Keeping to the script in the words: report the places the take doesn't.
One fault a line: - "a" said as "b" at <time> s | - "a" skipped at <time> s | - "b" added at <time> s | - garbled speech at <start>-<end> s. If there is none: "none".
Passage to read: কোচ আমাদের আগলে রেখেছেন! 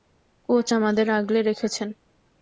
none